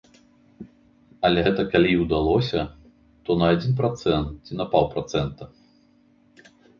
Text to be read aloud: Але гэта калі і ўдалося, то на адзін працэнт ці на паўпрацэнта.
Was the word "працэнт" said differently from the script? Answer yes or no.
no